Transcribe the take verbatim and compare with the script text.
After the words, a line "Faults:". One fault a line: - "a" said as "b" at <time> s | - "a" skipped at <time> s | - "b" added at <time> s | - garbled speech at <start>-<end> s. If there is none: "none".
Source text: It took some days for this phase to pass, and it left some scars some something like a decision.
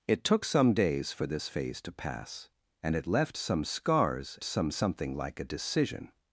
It took some days for this phase to pass, and it left some scars some something like a decision.
Faults:
none